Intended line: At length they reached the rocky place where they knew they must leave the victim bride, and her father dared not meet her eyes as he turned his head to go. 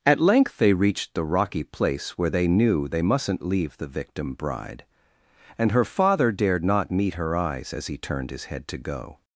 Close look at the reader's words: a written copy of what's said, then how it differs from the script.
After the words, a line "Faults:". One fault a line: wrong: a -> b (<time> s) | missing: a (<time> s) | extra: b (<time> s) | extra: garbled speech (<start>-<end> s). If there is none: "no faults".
At length they reached the rocky place where they knew they mustn't leave the victim bride, and her father dared not meet her eyes as he turned his head to go.
Faults:
wrong: must -> mustn't (3.0 s)